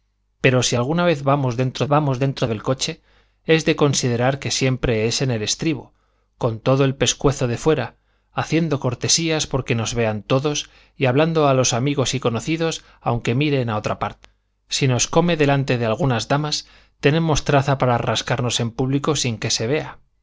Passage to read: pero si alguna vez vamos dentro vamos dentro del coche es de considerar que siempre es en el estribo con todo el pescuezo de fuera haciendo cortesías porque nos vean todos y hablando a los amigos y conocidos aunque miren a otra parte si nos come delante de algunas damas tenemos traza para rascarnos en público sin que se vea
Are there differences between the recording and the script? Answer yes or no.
no